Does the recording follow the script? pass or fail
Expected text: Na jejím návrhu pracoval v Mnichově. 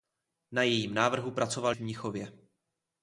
pass